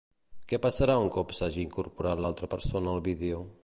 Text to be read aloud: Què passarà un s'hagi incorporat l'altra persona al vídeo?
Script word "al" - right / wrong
right